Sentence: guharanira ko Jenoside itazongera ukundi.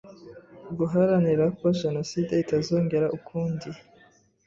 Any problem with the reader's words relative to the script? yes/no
no